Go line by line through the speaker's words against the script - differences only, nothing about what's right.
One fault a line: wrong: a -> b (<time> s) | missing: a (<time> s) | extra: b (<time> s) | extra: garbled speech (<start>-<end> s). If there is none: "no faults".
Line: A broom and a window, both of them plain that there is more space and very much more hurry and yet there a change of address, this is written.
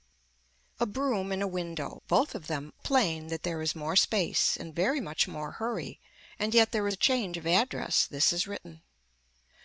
no faults